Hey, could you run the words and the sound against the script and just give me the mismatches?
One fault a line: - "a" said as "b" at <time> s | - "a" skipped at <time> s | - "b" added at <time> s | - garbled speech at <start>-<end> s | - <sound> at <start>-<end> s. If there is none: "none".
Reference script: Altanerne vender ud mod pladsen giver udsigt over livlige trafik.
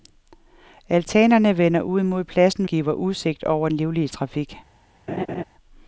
- laugh at 5.1-5.4 s